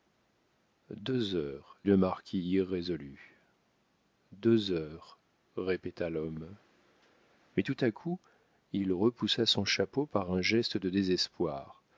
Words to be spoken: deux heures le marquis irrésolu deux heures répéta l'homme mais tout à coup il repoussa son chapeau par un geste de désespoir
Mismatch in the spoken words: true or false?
false